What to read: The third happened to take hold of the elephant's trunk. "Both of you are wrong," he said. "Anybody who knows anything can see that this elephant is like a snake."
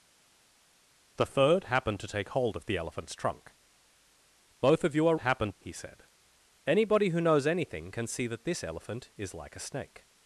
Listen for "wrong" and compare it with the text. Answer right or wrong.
wrong